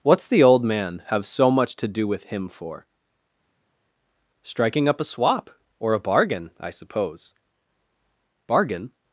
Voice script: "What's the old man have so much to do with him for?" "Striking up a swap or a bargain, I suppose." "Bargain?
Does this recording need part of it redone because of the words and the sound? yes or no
no